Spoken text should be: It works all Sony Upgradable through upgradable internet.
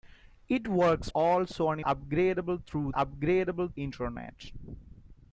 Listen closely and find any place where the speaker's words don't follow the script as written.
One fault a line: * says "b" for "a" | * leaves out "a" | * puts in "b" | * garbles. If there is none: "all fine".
all fine